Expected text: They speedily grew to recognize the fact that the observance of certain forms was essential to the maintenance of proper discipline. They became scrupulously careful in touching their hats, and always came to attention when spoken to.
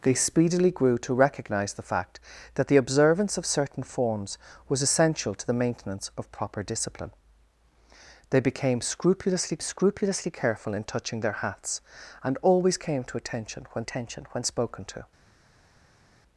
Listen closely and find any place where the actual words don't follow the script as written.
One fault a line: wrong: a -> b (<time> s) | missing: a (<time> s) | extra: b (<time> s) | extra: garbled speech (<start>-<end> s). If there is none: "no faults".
extra: scrupulously (9.6 s)
extra: attention when (13.8 s)